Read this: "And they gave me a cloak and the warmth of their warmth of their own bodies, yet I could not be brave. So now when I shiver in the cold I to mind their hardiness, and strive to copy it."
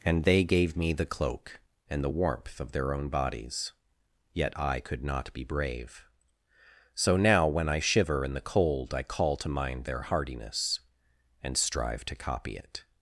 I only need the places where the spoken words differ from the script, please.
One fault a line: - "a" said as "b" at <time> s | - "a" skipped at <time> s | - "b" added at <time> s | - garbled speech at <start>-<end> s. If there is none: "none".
- "a" said as "the" at 0.9 s
- "warmth of their" skipped at 2.9 s
- "call" added at 9.0 s